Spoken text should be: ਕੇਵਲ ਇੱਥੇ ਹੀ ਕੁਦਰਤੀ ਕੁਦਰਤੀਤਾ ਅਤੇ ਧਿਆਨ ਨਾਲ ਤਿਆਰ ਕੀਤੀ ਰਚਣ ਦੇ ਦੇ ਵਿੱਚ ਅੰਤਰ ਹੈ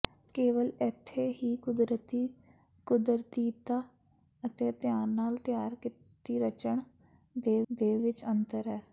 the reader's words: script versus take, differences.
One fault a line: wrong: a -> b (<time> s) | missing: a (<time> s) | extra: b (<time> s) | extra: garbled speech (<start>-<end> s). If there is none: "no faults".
no faults